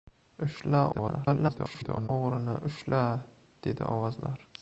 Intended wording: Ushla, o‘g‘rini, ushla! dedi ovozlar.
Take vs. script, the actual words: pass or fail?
fail